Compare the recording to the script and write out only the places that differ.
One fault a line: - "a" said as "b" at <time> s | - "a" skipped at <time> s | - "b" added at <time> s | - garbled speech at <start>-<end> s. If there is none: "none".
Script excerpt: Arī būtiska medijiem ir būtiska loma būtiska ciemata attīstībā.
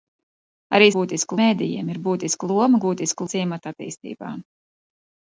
none